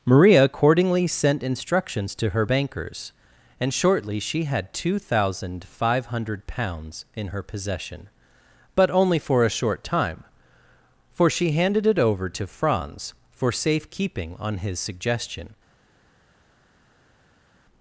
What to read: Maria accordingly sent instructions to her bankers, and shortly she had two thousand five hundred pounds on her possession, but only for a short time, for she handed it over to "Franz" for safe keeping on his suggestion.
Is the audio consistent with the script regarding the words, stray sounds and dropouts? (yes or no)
no